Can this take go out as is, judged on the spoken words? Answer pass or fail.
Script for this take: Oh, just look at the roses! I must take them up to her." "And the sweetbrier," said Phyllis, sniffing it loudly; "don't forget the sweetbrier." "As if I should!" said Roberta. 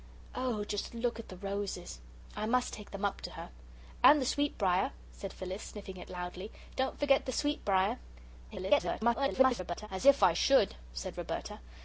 fail